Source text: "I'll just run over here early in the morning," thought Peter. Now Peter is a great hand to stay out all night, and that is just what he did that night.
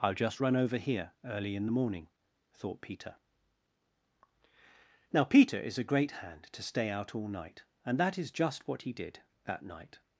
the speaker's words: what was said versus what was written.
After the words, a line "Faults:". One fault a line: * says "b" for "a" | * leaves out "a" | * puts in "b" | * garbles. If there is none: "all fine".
"I'll just run over here early in the morning," thought Peter. Now Peter is a great hand to stay out all night, and that is just what he did that night.
Faults:
all fine